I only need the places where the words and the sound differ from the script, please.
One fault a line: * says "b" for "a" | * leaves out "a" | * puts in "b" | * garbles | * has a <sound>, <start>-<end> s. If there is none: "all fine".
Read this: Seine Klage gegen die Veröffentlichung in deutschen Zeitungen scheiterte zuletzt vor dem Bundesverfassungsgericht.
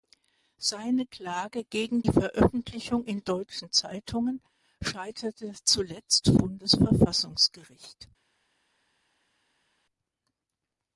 * leaves out "die"
* leaves out "vor dem"